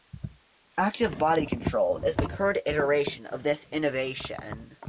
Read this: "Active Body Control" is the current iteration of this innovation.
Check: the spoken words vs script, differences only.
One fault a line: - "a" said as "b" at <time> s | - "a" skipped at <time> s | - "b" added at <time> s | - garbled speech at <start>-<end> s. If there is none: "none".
none